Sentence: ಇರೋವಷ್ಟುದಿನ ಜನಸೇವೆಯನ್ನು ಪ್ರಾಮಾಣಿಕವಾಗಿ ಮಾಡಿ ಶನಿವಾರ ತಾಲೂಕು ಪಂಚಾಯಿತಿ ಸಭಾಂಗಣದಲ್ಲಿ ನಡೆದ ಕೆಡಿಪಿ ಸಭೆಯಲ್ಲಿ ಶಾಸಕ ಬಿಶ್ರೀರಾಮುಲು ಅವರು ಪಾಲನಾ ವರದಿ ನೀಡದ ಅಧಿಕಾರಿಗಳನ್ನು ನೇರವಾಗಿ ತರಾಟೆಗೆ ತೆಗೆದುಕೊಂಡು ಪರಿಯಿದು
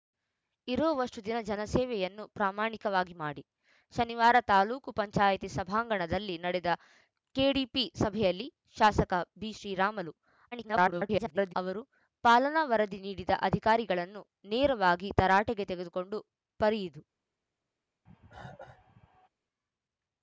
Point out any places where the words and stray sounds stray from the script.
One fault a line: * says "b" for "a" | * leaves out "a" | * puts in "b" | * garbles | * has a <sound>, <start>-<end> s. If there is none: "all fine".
* garbles
* has a cough, 18.1-19.3 s